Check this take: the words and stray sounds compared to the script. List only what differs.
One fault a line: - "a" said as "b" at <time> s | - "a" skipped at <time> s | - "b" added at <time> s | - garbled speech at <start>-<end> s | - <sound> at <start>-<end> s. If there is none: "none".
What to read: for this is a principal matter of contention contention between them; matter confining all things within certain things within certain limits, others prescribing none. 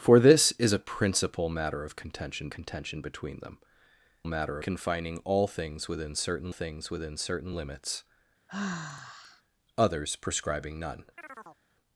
- sigh at 8.5-9.4 s
- chirp at 11.2-11.6 s